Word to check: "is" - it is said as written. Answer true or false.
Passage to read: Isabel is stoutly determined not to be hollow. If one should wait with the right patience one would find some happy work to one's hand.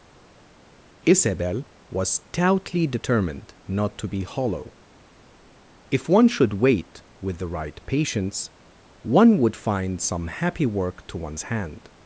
false